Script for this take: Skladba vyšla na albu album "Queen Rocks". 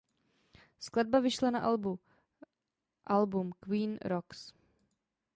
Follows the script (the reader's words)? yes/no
yes